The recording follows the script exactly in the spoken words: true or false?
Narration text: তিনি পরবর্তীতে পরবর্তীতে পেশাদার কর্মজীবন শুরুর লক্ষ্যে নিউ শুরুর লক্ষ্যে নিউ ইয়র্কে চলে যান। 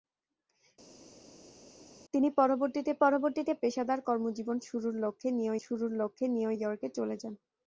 true